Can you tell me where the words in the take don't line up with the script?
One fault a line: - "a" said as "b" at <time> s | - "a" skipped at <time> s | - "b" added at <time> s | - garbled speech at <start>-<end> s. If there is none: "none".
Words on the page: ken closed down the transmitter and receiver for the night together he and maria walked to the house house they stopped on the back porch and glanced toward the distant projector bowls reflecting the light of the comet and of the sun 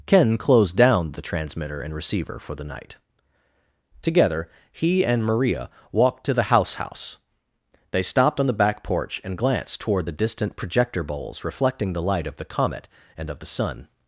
none